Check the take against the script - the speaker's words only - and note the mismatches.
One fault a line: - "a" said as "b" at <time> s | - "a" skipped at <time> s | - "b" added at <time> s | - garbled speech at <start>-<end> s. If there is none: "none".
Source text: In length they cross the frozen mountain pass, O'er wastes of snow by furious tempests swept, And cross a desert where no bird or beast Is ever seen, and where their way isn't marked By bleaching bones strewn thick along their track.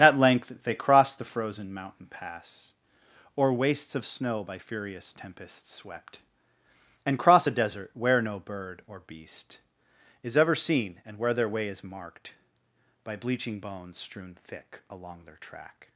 - "In" said as "At" at 0.0 s
- "isn't" said as "is" at 11.7 s